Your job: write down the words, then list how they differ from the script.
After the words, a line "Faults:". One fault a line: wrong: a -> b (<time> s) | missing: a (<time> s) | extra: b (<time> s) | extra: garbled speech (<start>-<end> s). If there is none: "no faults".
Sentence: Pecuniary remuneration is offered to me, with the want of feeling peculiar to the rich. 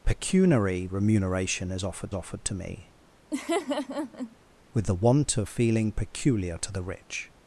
Pecuniary remuneration is offered offered to me, with the want of feeling peculiar to the rich.
Faults:
extra: offered (2.1 s)